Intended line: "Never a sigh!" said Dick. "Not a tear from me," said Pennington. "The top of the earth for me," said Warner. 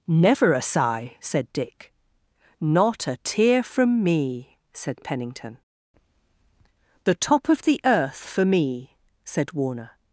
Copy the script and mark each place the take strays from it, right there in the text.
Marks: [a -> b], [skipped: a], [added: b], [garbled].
"Never a sigh!" said Dick. "Not a tear from me," said Pennington. "The top of the earth for me," said Warner.